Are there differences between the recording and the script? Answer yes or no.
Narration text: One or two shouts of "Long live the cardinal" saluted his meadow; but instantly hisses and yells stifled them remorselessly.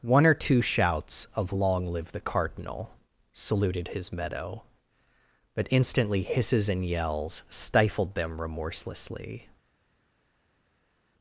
no